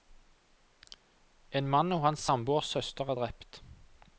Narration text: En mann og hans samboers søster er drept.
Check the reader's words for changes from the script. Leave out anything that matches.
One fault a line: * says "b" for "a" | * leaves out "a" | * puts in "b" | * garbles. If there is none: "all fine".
all fine